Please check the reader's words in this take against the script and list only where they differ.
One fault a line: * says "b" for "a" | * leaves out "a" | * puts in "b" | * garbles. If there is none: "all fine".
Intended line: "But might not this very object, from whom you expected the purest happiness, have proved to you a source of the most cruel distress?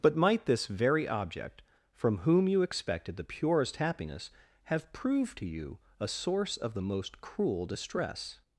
* leaves out "not"